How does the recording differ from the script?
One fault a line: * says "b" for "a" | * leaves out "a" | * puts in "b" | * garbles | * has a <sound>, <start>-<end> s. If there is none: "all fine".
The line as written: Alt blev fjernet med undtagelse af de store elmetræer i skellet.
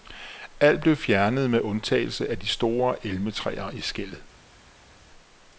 all fine